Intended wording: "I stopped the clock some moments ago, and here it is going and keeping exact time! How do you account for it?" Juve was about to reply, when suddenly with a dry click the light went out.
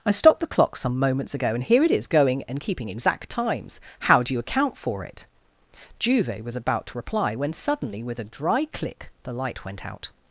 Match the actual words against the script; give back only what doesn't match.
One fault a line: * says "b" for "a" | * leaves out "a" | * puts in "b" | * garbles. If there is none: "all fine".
* says "times" for "time"